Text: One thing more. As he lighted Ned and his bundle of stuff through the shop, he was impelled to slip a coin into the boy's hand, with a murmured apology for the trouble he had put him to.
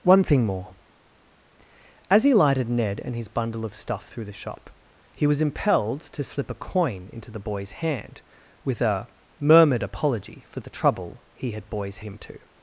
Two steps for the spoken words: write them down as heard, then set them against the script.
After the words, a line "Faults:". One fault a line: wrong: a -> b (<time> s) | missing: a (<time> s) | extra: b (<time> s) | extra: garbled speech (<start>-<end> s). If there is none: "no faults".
One thing more. As he lighted Ned and his bundle of stuff through the shop, he was impelled to slip a coin into the boy's hand, with a murmured apology for the trouble he had boy's him to.
Faults:
wrong: put -> boy's (11.6 s)